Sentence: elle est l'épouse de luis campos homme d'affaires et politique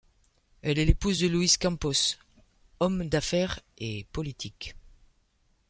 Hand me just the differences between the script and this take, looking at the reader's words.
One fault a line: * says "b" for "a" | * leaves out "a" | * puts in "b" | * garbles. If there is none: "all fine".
all fine